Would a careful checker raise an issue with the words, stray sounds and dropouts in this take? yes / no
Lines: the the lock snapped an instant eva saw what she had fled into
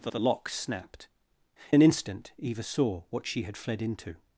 no